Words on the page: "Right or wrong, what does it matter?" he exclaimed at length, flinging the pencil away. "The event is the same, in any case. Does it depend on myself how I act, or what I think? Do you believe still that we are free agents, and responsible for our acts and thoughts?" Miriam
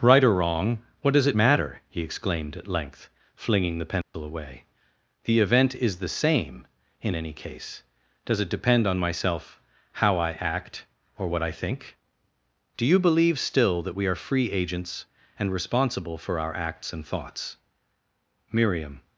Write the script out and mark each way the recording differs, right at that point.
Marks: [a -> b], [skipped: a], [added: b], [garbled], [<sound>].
"Right or wrong, what does it matter?" he exclaimed at length, flinging the pencil [dropout] away. "The event is the same, in any case. Does it depend on myself how I act, or what I think? Do you believe still that we are free agents, and responsible for our acts and thoughts?" Miriam